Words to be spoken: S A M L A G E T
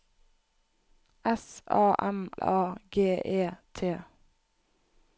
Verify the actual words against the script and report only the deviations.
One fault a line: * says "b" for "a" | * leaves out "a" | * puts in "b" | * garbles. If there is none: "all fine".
* leaves out "L"